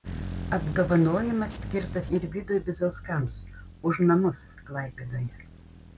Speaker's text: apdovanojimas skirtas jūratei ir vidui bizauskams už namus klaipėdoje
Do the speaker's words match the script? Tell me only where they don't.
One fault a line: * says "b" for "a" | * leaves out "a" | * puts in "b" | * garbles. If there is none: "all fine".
* leaves out "jūratei"